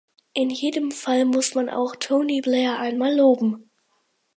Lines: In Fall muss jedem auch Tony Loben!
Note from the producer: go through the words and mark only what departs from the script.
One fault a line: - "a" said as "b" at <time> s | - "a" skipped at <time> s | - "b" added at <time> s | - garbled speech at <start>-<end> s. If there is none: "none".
- "jedem" added at 0.5 s
- "jedem" said as "man" at 1.5 s
- "Blair einmal" added at 2.4 s